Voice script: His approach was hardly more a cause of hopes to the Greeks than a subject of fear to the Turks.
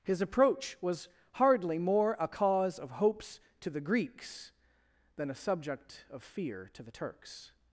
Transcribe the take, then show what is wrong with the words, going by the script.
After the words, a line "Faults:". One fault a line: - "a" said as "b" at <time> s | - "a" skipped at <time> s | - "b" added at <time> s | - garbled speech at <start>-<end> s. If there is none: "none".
His approach was hardly more a cause of hopes to the Greeks than a subject of fear to the Turks.
Faults:
none